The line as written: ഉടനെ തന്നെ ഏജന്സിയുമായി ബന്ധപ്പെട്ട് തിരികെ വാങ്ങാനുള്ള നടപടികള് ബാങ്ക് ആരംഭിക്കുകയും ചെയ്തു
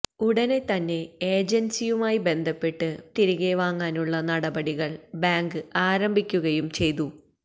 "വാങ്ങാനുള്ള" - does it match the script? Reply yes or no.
yes